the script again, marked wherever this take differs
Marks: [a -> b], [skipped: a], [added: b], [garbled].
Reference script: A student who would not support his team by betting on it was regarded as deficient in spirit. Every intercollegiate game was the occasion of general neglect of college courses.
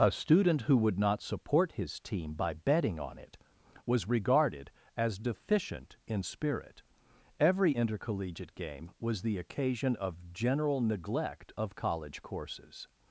A student who would not support his team by betting on it was regarded as deficient in spirit. Every intercollegiate game was the occasion of general neglect of college courses.